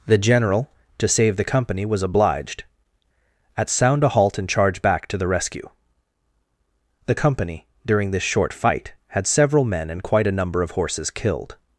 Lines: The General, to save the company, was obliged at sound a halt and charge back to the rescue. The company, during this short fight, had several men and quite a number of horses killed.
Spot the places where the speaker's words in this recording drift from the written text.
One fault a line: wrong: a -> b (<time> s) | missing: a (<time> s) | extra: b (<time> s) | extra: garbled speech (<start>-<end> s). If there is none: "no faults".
no faults